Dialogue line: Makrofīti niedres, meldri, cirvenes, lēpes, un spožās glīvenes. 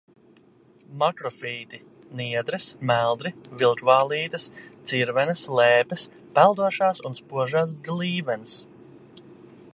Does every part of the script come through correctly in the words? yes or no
no